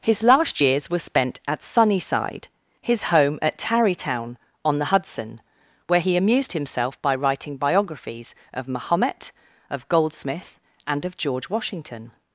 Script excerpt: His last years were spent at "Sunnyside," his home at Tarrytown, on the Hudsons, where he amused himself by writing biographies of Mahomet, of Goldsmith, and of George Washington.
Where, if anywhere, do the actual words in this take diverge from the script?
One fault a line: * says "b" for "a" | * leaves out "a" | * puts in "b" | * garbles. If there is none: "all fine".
* says "Hudson" for "Hudsons"